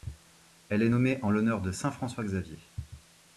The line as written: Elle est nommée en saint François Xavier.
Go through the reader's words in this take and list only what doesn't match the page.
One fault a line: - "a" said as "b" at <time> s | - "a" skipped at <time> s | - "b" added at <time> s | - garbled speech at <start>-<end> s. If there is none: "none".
- "l'honneur de" added at 1.3 s